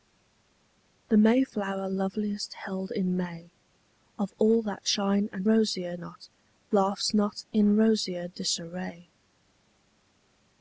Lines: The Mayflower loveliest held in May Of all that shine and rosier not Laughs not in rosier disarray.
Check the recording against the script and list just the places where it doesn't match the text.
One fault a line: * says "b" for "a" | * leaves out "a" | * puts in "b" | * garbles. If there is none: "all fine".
all fine